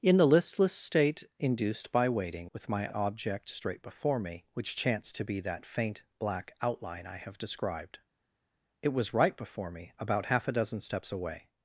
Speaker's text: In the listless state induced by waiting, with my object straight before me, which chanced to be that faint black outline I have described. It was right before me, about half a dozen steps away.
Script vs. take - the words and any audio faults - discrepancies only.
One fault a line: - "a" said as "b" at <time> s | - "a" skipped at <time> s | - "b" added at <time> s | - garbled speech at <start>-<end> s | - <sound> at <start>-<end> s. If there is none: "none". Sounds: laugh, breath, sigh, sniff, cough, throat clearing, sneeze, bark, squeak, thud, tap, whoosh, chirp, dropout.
none